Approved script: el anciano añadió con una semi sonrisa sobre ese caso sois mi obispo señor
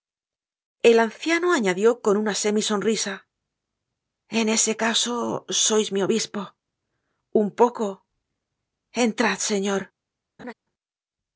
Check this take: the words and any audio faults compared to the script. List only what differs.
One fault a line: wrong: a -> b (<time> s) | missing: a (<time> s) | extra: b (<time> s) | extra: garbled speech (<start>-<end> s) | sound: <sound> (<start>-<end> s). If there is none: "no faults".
wrong: sobre -> en (4.3 s)
extra: un poco entrad (7.3 s)
sound: laugh (10.4-10.5 s)